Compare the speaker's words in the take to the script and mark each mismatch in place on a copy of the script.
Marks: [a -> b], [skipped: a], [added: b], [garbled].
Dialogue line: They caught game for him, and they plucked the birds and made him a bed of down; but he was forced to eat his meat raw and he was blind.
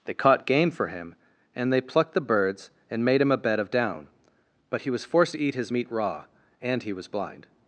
They caught game for him, and they plucked the birds and made him a bed of down; but he was forced to eat his meat raw and he was blind.